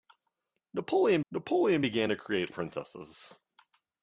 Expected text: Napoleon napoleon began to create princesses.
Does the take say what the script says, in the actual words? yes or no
yes